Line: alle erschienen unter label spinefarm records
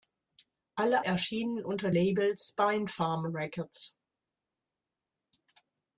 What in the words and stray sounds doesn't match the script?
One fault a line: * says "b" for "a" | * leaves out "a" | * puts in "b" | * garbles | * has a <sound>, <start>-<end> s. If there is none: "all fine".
all fine